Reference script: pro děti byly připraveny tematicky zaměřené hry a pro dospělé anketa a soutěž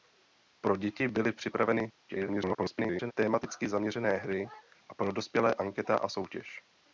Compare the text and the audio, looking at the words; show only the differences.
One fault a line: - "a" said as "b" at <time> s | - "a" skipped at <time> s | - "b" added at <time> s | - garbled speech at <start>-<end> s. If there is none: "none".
- garbled speech at 2.1-3.1 s